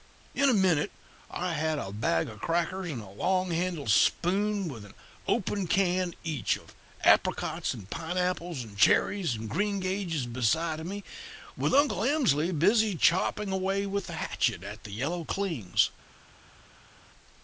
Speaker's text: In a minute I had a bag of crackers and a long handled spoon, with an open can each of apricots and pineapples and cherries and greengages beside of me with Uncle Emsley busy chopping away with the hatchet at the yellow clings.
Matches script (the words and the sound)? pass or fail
pass